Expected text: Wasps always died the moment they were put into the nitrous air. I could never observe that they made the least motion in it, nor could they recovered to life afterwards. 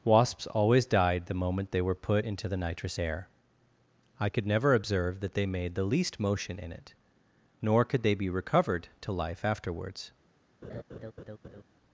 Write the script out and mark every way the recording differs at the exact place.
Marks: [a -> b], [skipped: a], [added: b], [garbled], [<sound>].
Wasps always died the moment they were put into the nitrous air. I could never observe that they made the least motion in it, nor could they [added: be] recovered to life afterwards. [laugh]